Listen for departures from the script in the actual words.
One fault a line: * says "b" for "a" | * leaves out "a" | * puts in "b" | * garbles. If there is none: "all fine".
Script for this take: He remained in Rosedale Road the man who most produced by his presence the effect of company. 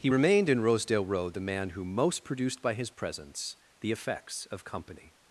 * says "effects" for "effect"